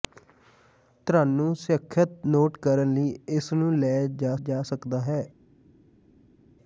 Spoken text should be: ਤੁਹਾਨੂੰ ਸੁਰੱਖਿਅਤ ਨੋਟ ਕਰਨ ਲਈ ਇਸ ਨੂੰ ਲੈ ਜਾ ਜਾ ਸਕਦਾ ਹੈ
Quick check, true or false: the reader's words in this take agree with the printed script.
true